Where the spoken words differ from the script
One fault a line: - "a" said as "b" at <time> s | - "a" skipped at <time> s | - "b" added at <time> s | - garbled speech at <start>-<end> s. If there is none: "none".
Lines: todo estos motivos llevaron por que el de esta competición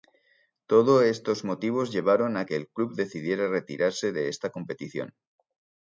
- "por" said as "a" at 2.4 s
- "club decidiera retirarse" added at 2.7 s